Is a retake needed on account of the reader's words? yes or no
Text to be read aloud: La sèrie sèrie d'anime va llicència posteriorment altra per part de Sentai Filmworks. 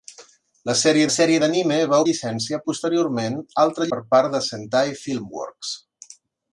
no